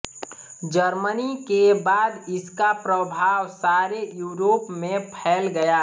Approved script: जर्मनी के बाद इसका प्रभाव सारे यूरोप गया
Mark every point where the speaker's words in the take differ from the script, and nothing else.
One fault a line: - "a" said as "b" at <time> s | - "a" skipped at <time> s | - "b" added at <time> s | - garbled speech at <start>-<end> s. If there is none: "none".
- "में फैल" added at 4.7 s